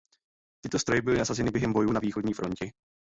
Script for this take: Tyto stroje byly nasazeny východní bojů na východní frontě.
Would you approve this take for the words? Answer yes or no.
no